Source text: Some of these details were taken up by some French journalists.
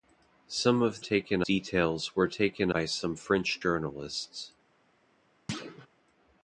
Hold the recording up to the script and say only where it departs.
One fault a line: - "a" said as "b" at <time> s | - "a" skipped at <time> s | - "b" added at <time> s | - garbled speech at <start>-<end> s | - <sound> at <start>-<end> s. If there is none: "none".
- "these" said as "taken" at 1.0 s
- "up" skipped at 2.7 s
- thud at 5.5-5.9 s